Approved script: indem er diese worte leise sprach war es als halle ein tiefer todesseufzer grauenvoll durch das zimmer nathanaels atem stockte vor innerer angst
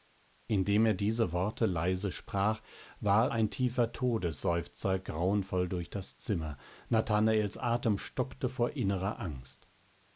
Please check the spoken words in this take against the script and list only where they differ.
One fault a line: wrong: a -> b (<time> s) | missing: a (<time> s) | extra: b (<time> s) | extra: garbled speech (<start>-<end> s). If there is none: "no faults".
missing: es als halle (3.3 s)